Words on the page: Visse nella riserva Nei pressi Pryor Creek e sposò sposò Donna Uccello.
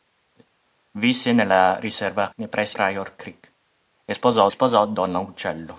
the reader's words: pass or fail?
pass